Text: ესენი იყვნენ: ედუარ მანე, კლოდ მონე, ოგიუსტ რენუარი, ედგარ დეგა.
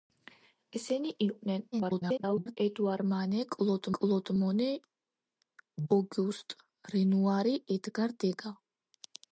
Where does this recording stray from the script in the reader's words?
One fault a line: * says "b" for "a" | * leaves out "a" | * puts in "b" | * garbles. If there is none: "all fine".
* garbles
* puts in "კლოდ"